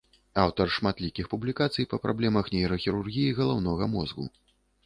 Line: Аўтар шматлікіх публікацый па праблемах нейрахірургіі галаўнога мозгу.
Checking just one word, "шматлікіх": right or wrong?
right